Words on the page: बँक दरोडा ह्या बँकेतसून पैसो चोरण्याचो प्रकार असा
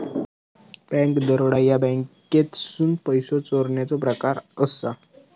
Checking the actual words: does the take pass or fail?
pass